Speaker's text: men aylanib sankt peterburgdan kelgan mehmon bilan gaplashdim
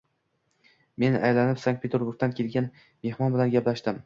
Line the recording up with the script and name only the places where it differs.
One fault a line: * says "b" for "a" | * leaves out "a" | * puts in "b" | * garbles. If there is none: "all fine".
all fine